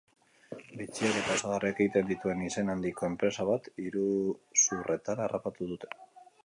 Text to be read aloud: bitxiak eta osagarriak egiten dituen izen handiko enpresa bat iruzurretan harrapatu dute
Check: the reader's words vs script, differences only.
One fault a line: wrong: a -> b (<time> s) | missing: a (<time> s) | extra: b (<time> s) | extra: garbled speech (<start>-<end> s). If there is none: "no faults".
no faults